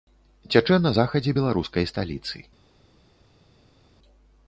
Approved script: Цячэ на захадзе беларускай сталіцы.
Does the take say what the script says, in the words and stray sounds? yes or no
yes